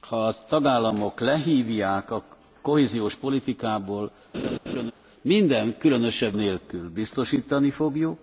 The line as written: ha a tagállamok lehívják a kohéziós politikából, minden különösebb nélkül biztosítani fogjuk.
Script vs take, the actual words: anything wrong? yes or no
no